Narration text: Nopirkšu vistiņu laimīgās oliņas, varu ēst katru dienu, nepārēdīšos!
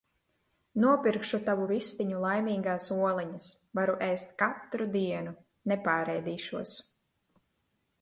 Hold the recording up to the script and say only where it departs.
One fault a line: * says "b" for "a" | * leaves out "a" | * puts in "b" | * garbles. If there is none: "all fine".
* puts in "tavu"